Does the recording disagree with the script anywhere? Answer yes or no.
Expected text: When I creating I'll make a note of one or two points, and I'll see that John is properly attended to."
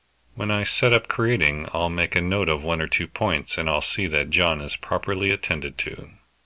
yes